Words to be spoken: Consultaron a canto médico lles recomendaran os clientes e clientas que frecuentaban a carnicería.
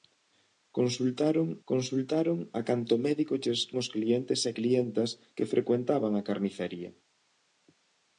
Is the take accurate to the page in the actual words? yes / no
no